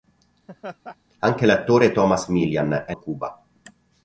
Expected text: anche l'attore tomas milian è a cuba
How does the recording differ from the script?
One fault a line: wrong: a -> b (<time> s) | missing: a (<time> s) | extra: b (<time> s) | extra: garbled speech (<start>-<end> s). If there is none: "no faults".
no faults